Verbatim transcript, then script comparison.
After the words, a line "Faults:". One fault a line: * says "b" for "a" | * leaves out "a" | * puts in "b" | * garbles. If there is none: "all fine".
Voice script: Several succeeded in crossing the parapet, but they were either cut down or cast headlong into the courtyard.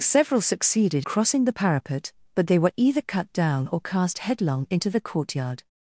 Several succeeded crossing the parapet, but they were either cut down or cast headlong into the courtyard.
Faults:
* leaves out "in"